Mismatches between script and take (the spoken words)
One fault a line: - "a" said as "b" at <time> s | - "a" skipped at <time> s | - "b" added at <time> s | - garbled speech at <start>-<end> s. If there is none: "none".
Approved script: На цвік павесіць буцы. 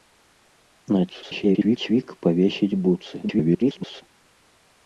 - garbled speech at 1.1-1.8 s
- garbled speech at 3.2-4.0 s